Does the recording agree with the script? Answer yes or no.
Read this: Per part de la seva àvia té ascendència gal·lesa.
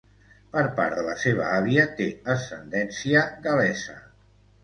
yes